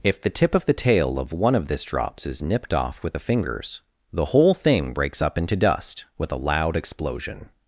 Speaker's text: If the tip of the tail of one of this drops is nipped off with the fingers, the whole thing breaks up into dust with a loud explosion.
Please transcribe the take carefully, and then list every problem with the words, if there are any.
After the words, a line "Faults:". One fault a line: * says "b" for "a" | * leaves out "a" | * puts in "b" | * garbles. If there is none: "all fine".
If the tip of the tail of one of this drops is nipped off with the fingers, the whole thing breaks up into dust with a loud explosion.
Faults:
all fine